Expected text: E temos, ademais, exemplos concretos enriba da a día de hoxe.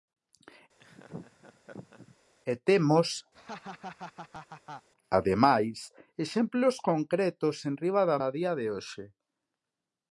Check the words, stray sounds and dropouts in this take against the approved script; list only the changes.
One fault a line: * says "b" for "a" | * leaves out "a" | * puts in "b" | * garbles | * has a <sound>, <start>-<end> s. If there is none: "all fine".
* has a laugh, 0.8-2.2 s
* has a laugh, 3.3-4.9 s